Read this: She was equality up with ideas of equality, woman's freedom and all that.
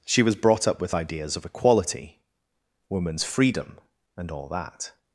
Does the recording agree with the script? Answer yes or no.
no